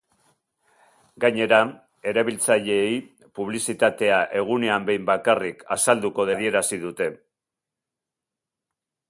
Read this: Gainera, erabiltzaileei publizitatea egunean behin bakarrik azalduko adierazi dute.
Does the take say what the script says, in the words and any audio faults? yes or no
yes